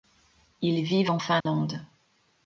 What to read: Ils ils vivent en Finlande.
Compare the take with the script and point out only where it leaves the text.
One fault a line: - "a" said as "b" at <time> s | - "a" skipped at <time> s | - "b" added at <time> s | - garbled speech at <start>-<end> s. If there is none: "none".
- "ils" skipped at 0.8 s